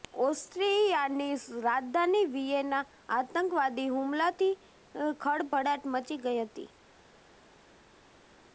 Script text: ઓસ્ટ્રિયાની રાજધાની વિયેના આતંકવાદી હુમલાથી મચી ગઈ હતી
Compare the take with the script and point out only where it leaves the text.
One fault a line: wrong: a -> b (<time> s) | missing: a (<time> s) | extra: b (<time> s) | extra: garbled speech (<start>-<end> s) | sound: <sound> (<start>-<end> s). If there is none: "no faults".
extra: ખળભળાટ (5.2 s)